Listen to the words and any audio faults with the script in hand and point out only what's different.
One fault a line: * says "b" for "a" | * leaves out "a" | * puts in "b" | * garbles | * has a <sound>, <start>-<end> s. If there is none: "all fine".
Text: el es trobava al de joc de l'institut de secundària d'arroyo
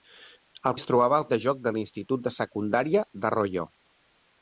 all fine